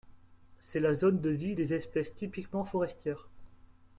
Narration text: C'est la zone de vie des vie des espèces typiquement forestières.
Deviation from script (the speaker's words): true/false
true